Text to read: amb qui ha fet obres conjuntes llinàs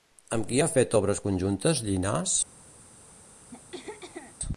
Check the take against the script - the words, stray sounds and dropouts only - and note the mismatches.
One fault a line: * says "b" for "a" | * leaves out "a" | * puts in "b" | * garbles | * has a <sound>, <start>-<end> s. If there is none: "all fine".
* has a throat clearing, 3.5-4.4 s